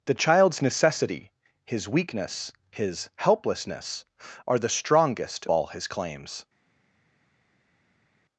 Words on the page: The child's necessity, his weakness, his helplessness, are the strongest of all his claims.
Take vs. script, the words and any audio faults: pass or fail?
fail